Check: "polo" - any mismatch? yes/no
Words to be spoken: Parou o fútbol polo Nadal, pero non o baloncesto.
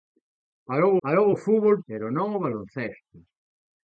yes